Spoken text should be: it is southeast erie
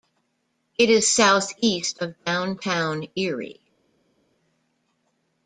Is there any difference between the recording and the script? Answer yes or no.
yes